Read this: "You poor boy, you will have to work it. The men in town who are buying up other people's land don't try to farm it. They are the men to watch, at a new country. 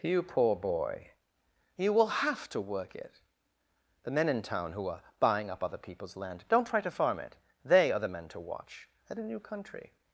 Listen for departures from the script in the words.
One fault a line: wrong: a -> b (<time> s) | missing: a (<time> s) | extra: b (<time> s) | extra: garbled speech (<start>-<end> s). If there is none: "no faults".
no faults